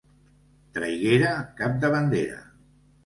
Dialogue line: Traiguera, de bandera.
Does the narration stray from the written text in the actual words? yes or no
yes